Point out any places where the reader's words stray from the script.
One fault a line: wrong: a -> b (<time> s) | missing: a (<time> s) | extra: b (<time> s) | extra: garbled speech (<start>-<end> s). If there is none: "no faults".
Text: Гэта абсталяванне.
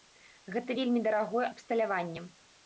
extra: вельмі дарагое (0.8 s)